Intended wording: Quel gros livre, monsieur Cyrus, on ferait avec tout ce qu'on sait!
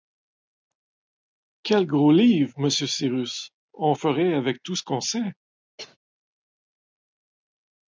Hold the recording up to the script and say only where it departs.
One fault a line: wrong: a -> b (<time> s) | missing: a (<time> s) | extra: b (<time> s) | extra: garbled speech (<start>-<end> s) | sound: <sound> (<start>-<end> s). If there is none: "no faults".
sound: cough (5.8-6.0 s)